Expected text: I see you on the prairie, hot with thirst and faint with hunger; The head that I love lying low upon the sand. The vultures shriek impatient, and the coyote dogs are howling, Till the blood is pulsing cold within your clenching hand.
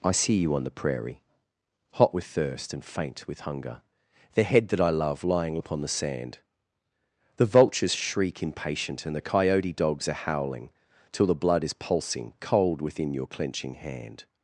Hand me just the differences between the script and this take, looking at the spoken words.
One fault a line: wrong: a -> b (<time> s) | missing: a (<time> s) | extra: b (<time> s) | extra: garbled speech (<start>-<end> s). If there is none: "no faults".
missing: low (5.6 s)